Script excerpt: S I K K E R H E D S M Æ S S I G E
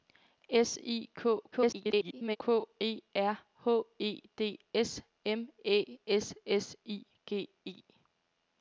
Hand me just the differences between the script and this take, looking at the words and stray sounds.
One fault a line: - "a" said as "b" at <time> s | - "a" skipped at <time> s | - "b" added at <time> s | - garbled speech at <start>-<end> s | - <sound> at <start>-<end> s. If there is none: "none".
- garbled speech at 1.5-2.4 s